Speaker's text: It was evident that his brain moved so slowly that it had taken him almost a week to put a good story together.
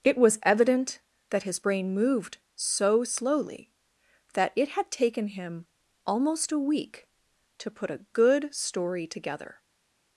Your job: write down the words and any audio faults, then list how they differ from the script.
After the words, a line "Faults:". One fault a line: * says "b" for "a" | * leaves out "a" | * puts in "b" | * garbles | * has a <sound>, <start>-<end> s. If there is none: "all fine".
It was evident that his brain moved so slowly that it had taken him almost a week to put a good story together.
Faults:
all fine